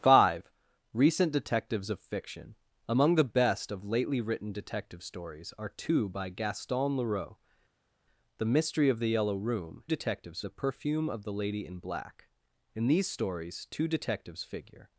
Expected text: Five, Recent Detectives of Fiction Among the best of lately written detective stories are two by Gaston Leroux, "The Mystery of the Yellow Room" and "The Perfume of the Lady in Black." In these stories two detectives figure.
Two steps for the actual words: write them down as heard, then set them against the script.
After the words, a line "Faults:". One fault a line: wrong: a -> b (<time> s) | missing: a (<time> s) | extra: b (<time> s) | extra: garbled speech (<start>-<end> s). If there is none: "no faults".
Five, Recent Detectives of Fiction Among the best of lately written detective stories are two by Gaston Leroux, "The Mystery of the Yellow Room" detectives "The Perfume of the Lady in Black." In these stories two detectives figure.
Faults:
wrong: and -> detectives (9.8 s)